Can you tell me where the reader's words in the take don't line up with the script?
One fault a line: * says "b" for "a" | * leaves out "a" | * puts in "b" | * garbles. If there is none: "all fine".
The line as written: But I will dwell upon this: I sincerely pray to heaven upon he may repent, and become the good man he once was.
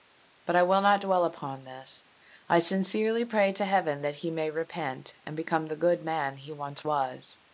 * puts in "not"
* says "that" for "upon"